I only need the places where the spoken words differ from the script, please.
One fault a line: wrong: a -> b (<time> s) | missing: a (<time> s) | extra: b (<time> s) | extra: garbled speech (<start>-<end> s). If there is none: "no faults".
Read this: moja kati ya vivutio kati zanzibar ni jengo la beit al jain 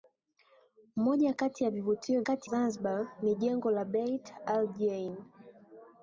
no faults